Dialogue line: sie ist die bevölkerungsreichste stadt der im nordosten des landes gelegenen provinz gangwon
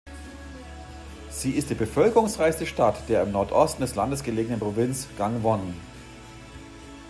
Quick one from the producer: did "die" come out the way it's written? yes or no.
yes